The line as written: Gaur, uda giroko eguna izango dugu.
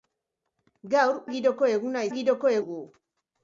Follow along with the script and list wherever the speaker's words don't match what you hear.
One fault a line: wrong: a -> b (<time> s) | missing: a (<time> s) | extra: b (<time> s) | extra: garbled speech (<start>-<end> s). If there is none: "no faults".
missing: uda (1.2 s)
wrong: izango -> giroko (2.1 s)